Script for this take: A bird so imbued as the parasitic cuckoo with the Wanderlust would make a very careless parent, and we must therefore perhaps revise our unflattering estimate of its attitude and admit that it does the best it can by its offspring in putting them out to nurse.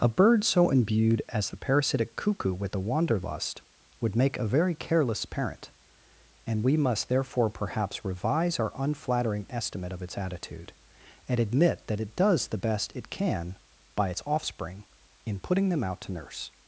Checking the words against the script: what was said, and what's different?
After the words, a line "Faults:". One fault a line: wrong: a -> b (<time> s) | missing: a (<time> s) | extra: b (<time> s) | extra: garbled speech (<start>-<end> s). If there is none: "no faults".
A bird so imbued as the parasitic cuckoo with the Wanderlust would make a very careless parent, and we must therefore perhaps revise our unflattering estimate of its attitude and admit that it does the best it can by its offspring in putting them out to nurse.
Faults:
no faults